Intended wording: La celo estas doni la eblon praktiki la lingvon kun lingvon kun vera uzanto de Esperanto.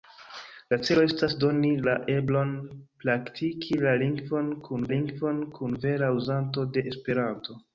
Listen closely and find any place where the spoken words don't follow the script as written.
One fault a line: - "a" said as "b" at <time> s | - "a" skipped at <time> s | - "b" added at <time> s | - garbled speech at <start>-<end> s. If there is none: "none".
none